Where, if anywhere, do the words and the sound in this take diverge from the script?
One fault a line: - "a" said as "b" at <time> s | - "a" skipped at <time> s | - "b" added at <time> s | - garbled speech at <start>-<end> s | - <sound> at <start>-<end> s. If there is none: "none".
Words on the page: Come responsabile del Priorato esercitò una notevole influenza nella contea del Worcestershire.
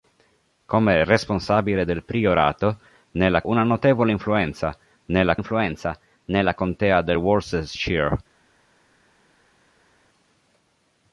- "esercitò" said as "nella" at 3.1 s
- "influenza nella" added at 5.3 s